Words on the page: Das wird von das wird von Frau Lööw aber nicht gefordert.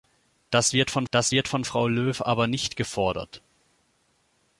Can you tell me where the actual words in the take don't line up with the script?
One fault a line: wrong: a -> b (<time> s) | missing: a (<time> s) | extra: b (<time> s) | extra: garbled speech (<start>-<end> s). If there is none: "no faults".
no faults